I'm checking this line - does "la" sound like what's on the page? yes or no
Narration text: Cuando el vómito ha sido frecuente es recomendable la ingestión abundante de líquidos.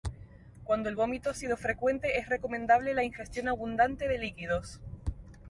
yes